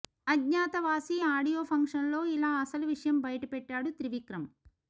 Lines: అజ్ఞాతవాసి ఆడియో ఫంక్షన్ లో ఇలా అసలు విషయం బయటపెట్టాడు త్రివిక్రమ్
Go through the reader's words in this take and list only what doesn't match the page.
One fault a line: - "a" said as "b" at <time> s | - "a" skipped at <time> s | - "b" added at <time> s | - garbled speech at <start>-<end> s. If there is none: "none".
none